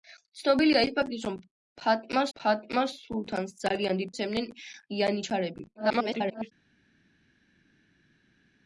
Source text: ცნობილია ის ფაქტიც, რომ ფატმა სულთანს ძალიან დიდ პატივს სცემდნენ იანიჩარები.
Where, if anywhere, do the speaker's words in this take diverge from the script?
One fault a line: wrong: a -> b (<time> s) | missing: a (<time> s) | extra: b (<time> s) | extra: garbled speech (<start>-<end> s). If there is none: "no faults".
extra: ფატმა (2.4 s)
missing: პატივს (4.1 s)
extra: garbled speech (5.7-6.5 s)